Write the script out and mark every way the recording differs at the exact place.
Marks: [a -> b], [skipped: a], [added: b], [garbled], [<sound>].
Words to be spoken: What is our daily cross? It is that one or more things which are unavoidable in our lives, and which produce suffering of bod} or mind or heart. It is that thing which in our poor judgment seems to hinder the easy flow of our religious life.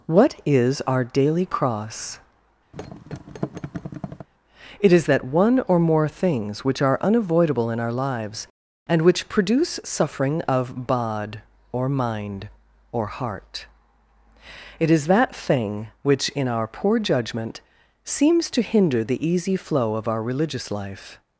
What is our daily cross? [thud] It is that one or more things which are unavoidable in our lives, and which produce suffering of bod} or mind or heart. It is that thing which in our poor judgment seems to hinder the easy flow of our religious life.